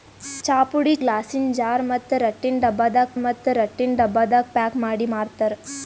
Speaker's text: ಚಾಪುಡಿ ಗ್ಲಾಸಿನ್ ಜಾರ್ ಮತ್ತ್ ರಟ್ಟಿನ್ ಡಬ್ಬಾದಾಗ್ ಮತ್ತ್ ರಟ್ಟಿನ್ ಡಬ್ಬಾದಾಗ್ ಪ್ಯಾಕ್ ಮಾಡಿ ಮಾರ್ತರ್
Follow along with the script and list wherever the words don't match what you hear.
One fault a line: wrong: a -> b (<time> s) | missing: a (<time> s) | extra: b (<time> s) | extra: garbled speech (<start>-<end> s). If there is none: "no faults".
no faults